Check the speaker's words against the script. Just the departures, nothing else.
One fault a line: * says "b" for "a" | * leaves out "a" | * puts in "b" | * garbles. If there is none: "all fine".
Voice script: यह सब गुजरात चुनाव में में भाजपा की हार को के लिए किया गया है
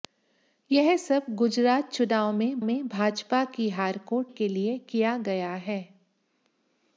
all fine